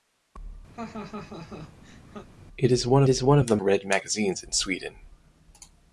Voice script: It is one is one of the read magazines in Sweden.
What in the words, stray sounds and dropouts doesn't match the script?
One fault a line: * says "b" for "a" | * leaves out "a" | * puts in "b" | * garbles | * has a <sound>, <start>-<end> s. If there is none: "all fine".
* has a laugh, 0.7-2.3 s